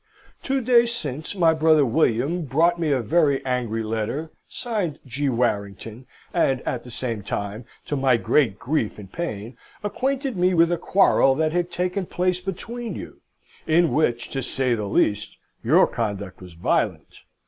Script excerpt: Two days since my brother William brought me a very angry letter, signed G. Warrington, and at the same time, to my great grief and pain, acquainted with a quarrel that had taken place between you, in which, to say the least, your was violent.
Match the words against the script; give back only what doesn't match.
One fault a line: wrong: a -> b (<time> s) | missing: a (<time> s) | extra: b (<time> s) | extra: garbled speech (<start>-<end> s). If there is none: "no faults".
extra: me (10.4 s)
extra: conduct (15.8 s)